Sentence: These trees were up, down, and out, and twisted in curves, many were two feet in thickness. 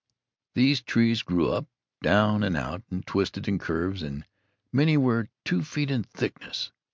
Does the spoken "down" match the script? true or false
true